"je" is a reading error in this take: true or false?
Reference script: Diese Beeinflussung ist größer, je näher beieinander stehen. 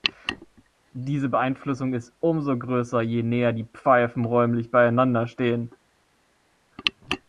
false